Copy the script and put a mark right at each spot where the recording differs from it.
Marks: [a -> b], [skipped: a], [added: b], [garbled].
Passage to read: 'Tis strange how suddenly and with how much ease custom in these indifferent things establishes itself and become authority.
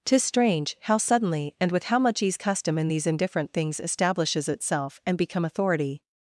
'Tis strange how suddenly and with how much ease custom in these indifferent things establishes itself and become authority.